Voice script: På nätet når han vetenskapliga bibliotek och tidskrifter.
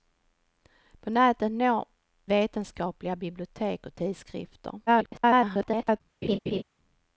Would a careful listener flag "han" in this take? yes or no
yes